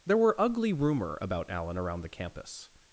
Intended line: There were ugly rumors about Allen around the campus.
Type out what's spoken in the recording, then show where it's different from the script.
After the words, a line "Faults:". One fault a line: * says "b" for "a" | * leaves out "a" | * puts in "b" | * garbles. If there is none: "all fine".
There were ugly rumor about Allen around the campus.
Faults:
* says "rumor" for "rumors"